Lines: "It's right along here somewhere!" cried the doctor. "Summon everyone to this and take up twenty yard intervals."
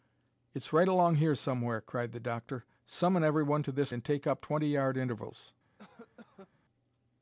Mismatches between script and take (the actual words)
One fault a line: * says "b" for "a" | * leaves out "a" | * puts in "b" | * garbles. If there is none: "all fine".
all fine